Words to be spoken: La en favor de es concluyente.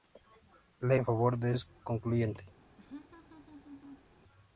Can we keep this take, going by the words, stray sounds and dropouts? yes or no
no